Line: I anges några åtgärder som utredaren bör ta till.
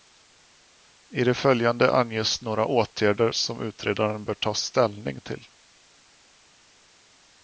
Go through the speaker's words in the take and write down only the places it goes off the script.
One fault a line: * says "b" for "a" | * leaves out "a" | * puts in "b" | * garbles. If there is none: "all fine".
* puts in "det följande"
* puts in "ställning"